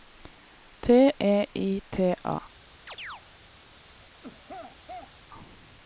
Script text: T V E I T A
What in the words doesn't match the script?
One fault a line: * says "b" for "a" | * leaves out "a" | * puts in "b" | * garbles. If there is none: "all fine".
* leaves out "V"